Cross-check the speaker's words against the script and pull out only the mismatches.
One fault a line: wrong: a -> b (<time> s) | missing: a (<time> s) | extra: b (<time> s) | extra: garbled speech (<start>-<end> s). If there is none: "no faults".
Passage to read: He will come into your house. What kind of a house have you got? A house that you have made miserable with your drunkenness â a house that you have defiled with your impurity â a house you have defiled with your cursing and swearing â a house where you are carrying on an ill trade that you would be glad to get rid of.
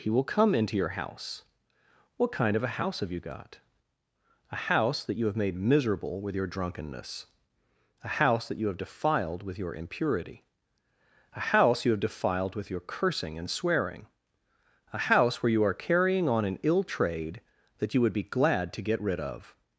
no faults